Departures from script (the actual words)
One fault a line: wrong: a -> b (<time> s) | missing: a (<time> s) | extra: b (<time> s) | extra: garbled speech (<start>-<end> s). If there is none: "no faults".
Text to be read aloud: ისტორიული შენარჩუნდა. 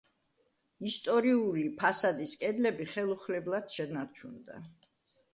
extra: ფასადის კედლები ხელუხლებლად (1.8 s)